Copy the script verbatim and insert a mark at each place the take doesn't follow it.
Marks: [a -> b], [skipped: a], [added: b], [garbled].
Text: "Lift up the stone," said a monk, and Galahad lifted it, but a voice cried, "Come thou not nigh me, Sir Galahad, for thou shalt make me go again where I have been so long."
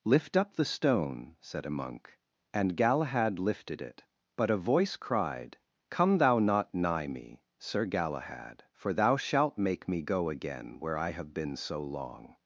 "Lift up the stone," said a monk, and Galahad lifted it, but a voice cried, "Come thou not nigh me, Sir Galahad, for thou shalt make me go again where I have been so long."